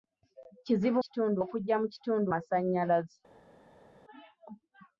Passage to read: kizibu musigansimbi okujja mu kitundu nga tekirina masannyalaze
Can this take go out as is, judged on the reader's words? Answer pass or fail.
fail